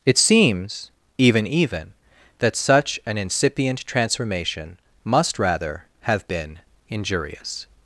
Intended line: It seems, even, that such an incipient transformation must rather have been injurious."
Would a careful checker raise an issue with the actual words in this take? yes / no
yes